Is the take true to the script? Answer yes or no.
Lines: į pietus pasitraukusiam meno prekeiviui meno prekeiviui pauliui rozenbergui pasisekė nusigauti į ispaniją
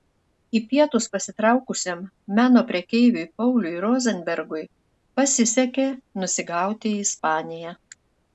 no